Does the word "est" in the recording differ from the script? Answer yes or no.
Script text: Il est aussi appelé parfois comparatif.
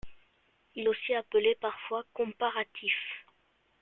yes